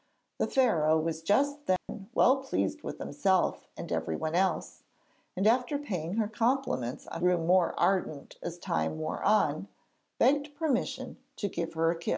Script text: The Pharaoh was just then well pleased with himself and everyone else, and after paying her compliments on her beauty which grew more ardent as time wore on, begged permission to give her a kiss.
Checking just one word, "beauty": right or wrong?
wrong